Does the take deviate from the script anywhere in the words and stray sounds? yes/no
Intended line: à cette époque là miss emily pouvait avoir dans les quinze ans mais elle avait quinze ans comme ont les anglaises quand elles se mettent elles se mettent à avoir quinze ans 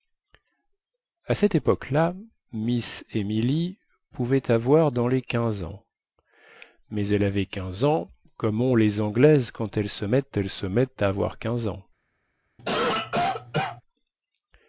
yes